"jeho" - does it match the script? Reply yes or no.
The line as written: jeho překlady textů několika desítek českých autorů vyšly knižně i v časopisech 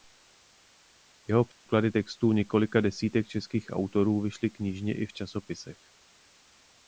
yes